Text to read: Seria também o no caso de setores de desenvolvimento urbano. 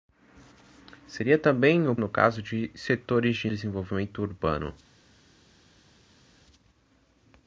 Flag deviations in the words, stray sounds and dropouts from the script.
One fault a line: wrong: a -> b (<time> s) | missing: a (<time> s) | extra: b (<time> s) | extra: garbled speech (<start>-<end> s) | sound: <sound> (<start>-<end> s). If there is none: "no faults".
no faults